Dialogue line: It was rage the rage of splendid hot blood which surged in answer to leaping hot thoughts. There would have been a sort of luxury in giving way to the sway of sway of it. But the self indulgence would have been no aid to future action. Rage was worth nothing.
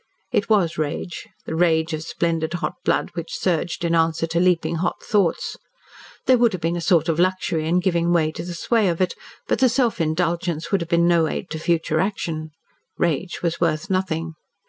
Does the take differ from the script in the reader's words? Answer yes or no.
yes